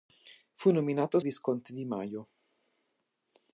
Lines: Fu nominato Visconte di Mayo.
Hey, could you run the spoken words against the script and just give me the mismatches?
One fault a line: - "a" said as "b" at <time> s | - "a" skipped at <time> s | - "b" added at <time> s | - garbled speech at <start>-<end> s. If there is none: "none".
none